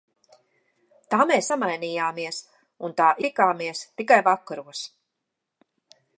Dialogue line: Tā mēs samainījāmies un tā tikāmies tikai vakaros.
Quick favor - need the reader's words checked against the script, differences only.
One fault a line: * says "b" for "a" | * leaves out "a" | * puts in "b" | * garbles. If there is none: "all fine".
all fine